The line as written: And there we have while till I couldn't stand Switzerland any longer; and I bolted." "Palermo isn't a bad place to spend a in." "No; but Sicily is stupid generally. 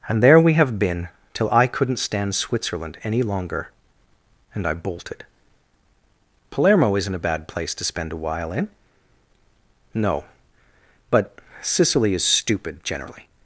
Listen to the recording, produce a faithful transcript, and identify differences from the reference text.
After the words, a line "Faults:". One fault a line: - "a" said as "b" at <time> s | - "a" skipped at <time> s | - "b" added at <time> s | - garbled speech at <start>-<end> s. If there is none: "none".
And there we have been till I couldn't stand Switzerland any longer; and I bolted." "Palermo isn't a bad place to spend a while in." "No; but Sicily is stupid generally.
Faults:
- "while" said as "been" at 0.8 s
- "while" added at 8.2 s